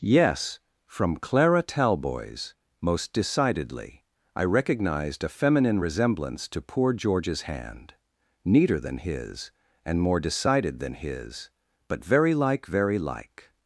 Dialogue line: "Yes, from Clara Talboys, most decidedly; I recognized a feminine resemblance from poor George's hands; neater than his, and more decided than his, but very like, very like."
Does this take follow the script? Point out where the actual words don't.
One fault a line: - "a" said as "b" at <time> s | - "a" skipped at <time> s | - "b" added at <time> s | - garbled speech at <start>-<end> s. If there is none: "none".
- "from" said as "to" at 6.5 s
- "hands" said as "hand" at 7.4 s